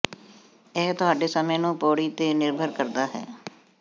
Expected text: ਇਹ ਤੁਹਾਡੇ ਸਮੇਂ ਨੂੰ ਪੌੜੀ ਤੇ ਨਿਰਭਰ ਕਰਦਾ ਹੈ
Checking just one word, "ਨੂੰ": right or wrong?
right